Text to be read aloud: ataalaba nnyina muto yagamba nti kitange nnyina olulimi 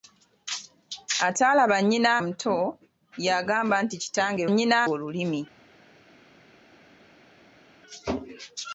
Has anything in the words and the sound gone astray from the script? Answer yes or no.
no